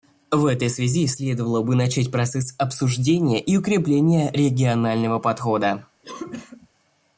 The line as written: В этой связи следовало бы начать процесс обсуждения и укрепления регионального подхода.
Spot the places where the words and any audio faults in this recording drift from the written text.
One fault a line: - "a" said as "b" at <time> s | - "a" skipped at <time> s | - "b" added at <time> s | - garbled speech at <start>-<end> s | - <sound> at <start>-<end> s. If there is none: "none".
- cough at 6.0-6.7 s